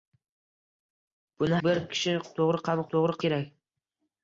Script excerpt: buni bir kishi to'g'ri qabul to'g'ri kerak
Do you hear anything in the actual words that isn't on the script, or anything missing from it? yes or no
no